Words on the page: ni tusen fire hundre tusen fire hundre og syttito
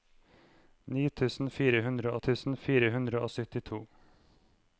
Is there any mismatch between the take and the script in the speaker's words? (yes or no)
no